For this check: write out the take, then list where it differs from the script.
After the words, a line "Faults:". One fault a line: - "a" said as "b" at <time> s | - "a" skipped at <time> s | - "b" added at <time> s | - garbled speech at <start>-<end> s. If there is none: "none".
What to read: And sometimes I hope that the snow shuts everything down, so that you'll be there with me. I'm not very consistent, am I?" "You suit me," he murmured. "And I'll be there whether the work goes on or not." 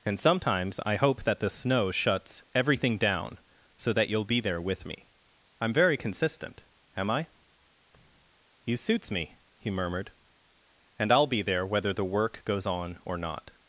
And sometimes I hope that the snow shuts everything down, so that you'll be there with me. I'm very consistent, am I?" "You suits me," he murmured. "And I'll be there whether the work goes on or not."
Faults:
- "not" skipped at 5.7 s
- "suit" said as "suits" at 8.8 s